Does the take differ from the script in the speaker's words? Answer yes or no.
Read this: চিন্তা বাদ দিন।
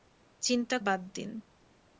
no